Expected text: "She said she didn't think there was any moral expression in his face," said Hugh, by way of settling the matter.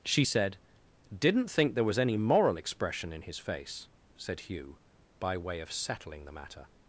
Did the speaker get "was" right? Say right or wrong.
right